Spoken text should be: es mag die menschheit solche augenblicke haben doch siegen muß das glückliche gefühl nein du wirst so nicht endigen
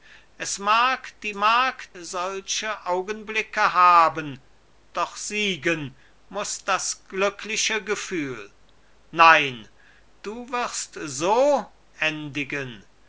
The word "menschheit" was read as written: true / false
false